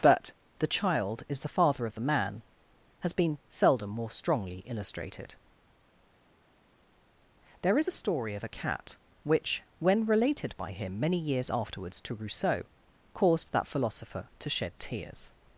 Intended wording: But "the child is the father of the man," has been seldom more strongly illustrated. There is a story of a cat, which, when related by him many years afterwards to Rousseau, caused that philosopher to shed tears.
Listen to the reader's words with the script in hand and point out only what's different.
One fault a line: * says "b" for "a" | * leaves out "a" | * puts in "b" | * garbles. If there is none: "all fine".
all fine